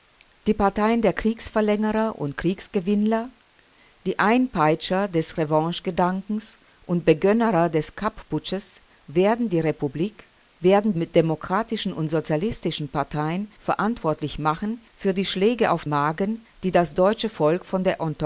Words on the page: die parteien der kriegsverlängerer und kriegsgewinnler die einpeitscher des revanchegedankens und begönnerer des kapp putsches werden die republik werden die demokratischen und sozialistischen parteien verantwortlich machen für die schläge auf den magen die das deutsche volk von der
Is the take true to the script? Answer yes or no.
no